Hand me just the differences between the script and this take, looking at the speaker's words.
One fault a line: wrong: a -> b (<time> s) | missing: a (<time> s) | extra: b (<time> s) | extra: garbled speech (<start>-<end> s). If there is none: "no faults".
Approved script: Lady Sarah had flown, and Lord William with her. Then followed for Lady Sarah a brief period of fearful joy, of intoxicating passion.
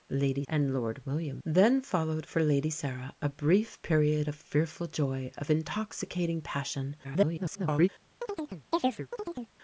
missing: Sarah had flown (0.4 s)
missing: with her (1.4 s)
extra: garbled speech (7.0-7.9 s)